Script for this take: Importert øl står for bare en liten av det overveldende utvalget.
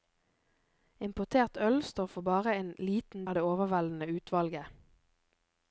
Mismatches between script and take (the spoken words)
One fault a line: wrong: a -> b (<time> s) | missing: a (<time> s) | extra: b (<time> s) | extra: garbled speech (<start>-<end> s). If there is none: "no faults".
no faults